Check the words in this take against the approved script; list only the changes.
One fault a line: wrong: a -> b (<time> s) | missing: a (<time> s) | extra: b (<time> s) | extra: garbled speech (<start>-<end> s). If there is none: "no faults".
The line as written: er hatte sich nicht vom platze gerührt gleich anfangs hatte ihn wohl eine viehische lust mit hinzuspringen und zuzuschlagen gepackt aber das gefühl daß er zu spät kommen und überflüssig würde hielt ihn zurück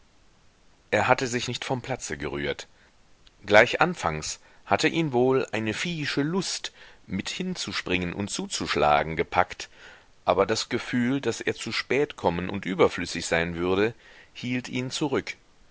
extra: sein (13.3 s)